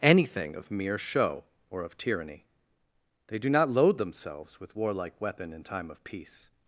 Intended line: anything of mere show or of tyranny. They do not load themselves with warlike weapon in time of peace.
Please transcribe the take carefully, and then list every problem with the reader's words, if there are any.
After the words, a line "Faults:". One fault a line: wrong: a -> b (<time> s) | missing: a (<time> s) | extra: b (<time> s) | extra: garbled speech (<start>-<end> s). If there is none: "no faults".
anything of mere show or of tyranny. They do not load themselves with warlike weapon in time of peace.
Faults:
no faults